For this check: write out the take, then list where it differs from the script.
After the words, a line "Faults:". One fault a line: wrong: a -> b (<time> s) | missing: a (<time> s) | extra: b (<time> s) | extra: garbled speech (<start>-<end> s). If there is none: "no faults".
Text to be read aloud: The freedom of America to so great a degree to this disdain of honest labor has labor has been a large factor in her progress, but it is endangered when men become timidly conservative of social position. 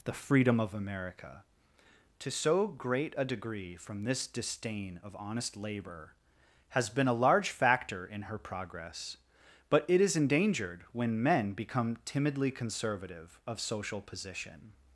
The freedom of America to so great a degree from this disdain of honest labor has been a large factor in her progress, but it is endangered when men become timidly conservative of social position.
Faults:
wrong: to -> from (3.8 s)
missing: labor has (6.9 s)